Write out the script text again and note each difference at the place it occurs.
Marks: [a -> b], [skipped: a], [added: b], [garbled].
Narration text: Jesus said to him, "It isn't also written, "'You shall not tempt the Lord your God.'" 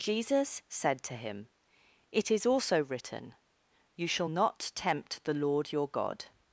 Jesus said to him, "It [isn't -> is] also written, "'You shall not tempt the Lord your God.'"